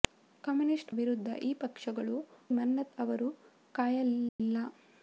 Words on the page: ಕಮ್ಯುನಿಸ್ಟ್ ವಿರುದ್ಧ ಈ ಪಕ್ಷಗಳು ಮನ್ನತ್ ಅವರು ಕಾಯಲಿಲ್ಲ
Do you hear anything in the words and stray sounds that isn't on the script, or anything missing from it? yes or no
yes